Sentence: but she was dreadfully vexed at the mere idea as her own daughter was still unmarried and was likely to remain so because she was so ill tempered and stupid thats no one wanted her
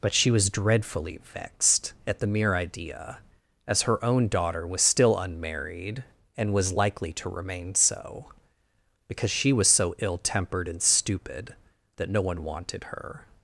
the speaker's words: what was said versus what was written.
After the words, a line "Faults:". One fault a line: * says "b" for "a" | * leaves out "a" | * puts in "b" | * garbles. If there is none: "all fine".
but she was dreadfully vexed at the mere idea as her own daughter was still unmarried and was likely to remain so because she was so ill tempered and stupid that no one wanted her
Faults:
* says "that" for "thats"